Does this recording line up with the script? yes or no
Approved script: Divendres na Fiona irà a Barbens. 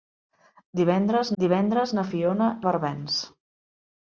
no